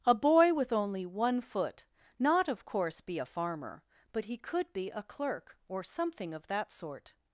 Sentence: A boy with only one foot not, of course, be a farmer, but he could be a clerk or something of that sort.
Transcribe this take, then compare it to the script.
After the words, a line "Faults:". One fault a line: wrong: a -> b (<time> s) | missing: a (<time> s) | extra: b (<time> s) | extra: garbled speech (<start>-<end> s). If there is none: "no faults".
A boy with only one foot not, of course, be a farmer, but he could be a clerk or something of that sort.
Faults:
no faults